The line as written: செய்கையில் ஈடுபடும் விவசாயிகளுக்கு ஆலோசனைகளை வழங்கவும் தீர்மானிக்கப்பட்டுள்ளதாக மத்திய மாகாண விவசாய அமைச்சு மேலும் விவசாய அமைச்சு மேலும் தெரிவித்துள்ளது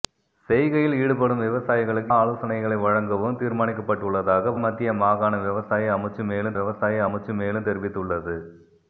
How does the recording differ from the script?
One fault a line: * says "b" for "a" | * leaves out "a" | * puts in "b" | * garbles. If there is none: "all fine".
all fine